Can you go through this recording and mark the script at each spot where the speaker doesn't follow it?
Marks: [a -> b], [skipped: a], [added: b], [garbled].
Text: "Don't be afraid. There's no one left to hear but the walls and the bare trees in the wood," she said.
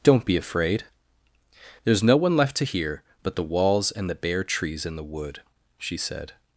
"Don't be afraid. There's no one left to hear but the walls and the bare trees in the wood," she said.